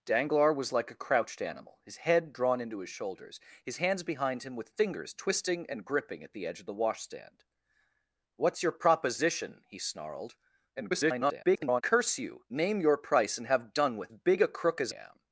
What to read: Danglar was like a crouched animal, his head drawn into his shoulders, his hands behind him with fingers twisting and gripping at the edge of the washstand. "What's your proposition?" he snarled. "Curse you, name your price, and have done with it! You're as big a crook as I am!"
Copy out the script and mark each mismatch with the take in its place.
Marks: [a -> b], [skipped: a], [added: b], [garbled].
Danglar was like a crouched animal, his head drawn into his shoulders, his hands behind him with fingers twisting and gripping at the edge of the washstand. "What's your proposition?" he snarled. [garbled] "Curse you, name your price, and have done with [skipped: it! You're as] big a crook as [skipped: I] am!"